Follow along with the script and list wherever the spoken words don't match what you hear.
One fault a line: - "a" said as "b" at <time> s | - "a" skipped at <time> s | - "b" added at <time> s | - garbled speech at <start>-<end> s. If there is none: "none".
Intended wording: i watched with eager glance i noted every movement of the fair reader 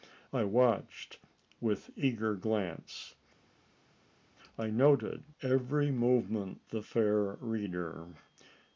- "of" skipped at 6.6 s